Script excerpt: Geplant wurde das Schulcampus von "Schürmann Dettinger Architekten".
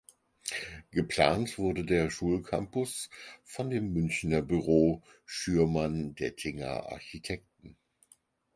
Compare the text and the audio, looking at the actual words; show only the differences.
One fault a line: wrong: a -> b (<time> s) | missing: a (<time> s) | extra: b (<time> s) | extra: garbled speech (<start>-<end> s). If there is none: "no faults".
wrong: das -> der (1.9 s)
extra: dem Münchner Büro (3.7 s)